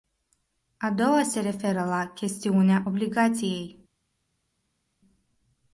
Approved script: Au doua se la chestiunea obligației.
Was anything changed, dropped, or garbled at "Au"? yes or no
yes